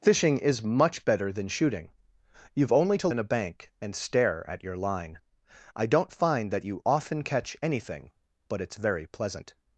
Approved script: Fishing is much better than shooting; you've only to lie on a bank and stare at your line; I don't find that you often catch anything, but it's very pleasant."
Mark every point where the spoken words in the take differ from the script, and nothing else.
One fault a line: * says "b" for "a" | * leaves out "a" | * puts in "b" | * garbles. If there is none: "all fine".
* leaves out "lie"